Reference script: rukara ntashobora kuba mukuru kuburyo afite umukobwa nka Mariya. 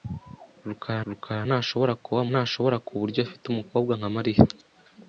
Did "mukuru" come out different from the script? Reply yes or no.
yes